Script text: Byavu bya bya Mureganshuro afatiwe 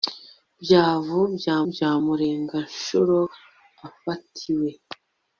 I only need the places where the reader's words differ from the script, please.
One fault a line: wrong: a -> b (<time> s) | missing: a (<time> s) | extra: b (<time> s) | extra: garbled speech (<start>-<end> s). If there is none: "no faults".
no faults